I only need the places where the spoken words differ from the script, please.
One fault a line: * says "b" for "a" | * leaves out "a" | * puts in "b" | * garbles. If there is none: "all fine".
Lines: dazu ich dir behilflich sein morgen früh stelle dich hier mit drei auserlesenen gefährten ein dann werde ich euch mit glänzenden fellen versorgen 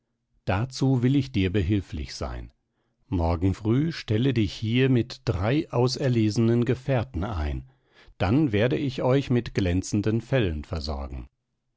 * puts in "will"